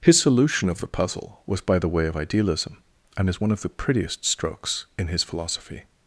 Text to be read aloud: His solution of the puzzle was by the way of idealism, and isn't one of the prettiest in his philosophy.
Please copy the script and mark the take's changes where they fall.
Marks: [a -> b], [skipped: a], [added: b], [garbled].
His solution of the puzzle was by the way of idealism, and [isn't -> is] one of the prettiest [added: strokes] in his philosophy.